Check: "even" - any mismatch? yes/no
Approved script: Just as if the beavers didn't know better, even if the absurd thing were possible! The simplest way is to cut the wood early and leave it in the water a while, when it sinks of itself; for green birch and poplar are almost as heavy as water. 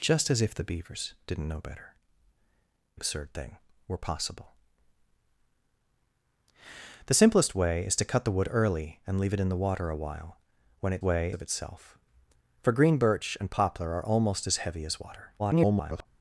yes